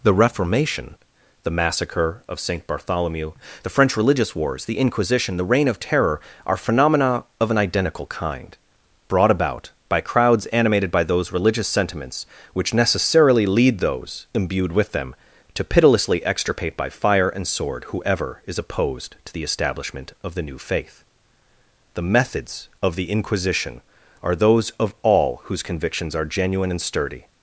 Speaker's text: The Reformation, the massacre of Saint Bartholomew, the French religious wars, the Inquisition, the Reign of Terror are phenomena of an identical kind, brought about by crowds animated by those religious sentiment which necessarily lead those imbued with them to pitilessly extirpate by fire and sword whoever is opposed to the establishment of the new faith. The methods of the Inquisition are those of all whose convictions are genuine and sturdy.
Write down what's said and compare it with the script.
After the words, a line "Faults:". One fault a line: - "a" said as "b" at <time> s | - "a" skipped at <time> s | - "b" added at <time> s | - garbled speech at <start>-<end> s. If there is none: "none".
The Reformation, the massacre of Saint Bartholomew, the French religious wars, the Inquisition, the Reign of Terror are phenomena of an identical kind, brought about by crowds animated by those religious sentiments which necessarily lead those imbued with them to pitilessly extirpate by fire and sword whoever is opposed to the establishment of the new faith. The methods of the Inquisition are those of all whose convictions are genuine and sturdy.
Faults:
- "sentiment" said as "sentiments" at 11.7 s